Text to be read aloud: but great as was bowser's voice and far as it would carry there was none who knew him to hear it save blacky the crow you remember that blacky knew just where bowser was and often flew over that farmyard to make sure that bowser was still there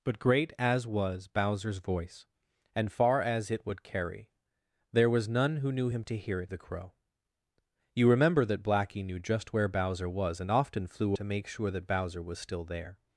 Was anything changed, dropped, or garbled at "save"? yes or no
yes